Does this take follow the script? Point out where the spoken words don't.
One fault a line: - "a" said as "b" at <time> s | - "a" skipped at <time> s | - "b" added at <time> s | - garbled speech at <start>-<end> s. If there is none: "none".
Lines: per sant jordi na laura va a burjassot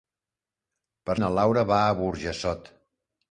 - "sant jordi" skipped at 1.1 s